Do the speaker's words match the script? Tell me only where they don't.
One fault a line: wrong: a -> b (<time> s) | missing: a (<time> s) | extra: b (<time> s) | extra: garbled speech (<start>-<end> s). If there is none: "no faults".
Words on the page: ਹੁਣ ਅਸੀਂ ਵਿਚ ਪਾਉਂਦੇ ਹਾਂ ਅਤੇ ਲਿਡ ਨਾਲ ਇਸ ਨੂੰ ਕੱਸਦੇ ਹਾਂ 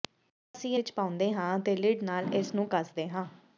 no faults